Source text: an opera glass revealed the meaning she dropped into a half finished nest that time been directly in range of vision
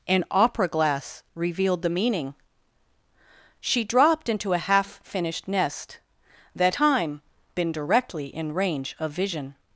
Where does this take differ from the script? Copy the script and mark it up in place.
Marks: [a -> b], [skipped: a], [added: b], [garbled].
an opera glass revealed the meaning she dropped into a half finished nest that time been directly in range of vision